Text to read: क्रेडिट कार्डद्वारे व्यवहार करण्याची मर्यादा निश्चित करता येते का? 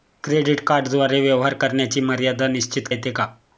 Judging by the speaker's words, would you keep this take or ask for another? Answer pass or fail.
fail